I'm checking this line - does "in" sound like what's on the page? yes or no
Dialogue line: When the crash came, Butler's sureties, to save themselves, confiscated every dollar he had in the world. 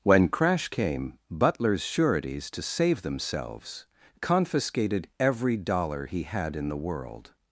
yes